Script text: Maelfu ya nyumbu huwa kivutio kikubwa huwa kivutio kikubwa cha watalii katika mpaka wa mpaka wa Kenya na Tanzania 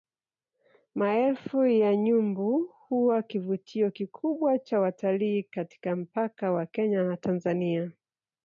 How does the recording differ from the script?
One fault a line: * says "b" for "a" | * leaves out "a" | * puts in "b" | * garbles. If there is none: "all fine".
* leaves out "huwa kivutio kikubwa"
* leaves out "mpaka wa"